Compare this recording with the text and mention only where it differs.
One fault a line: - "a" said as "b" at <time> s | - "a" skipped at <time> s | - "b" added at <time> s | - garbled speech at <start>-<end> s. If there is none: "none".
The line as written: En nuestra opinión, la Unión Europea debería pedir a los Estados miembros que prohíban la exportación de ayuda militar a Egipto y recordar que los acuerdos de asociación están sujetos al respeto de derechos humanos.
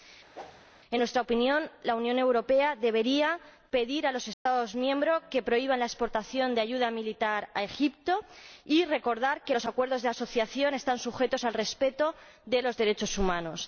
- "los" added at 12.6 s